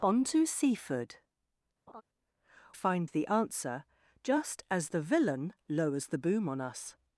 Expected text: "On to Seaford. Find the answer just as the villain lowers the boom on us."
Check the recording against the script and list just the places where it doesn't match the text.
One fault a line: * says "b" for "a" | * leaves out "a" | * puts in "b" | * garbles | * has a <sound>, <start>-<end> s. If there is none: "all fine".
* has a laugh, 1.9-2.0 s